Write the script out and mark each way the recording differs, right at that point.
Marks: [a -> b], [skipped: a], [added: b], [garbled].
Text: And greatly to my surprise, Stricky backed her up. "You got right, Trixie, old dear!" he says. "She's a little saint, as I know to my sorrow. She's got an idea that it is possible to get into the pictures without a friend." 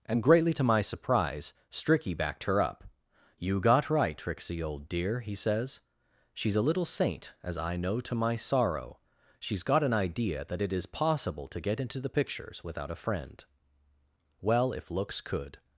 And greatly to my surprise, Stricky backed her up. "You got right, Trixie, old dear!" he says. "She's a little saint, as I know to my sorrow. She's got an idea that it is possible to get into the pictures without a friend." [added: Well if looks could]